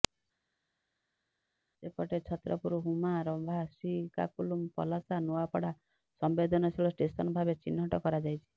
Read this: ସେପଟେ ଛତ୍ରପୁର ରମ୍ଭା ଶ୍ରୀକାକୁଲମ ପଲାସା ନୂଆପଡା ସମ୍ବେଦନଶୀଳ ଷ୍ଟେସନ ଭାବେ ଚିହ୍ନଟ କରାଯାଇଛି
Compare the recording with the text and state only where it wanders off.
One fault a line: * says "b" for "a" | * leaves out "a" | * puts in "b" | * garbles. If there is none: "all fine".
* puts in "ହୁମା"